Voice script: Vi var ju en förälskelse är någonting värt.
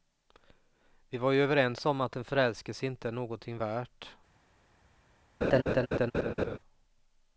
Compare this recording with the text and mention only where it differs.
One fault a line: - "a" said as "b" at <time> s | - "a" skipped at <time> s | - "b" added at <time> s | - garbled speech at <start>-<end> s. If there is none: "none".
- "överens om att" added at 1.4 s
- "inte" added at 2.9 s